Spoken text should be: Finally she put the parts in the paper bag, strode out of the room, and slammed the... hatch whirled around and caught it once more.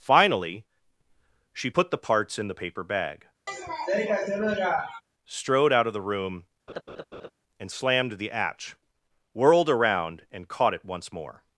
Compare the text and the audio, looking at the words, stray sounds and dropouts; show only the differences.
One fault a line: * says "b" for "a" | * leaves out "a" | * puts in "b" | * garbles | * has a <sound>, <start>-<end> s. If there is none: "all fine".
* has a sniff, 3.5-5.0 s
* has a laugh, 6.7-7.3 s